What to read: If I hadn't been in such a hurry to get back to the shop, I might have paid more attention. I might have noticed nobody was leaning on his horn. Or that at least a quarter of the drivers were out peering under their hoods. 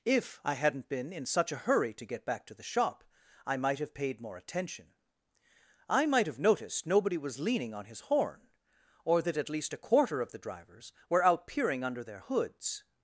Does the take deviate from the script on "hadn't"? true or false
false